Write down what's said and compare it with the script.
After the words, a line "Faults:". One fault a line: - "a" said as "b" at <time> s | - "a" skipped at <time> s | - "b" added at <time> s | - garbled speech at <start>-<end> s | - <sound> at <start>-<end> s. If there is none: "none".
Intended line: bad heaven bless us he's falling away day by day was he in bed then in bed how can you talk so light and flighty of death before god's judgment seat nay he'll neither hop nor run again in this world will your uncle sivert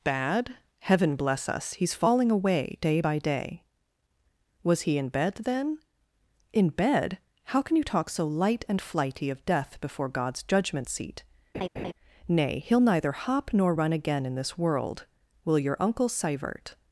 bad heaven bless us he's falling away day by day was he in bed then in bed how can you talk so light and flighty of death before god's judgment seat nay he'll neither hop nor run again in this world will your uncle sivert
Faults:
- laugh at 11.5-11.9 s